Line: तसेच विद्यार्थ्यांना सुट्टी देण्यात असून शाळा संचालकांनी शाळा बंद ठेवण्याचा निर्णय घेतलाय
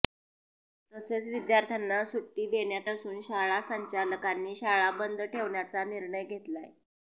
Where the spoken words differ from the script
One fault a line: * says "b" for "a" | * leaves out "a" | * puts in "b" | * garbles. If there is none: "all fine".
all fine